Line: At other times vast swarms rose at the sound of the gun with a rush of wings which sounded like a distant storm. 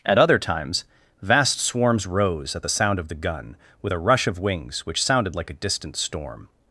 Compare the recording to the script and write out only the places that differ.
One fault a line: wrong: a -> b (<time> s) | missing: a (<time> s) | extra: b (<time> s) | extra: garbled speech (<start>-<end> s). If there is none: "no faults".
no faults